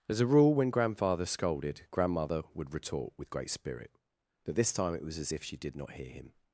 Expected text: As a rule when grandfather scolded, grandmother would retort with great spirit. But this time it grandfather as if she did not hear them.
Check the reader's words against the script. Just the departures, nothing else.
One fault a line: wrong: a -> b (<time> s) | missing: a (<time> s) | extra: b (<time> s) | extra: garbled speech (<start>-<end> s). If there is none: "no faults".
wrong: grandfather -> was (5.0 s)
wrong: them -> him (6.1 s)